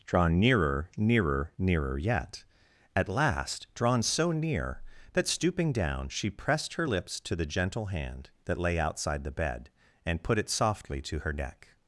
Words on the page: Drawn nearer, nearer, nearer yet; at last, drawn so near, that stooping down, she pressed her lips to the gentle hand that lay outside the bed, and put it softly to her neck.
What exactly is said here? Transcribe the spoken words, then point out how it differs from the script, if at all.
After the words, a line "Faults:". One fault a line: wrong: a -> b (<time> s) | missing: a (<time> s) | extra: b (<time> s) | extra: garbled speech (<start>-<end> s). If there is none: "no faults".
Drawn nearer, nearer, nearer yet; at last, drawn so near, that stooping down, she pressed her lips to the gentle hand that lay outside the bed, and put it softly to her neck.
Faults:
no faults